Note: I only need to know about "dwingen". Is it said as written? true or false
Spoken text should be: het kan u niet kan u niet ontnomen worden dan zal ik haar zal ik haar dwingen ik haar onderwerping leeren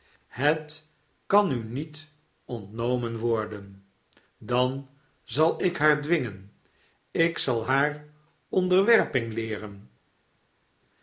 false